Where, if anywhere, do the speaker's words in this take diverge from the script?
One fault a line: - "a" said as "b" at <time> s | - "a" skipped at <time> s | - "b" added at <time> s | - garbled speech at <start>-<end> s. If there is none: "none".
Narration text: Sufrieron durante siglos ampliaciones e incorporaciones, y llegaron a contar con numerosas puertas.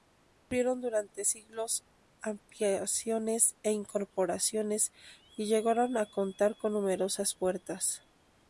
none